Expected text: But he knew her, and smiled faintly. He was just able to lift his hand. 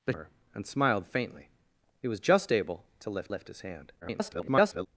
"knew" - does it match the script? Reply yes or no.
no